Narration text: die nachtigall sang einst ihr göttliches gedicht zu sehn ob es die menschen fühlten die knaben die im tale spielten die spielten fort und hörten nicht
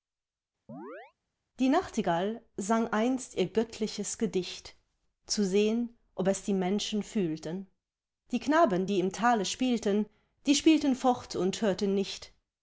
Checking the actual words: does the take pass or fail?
pass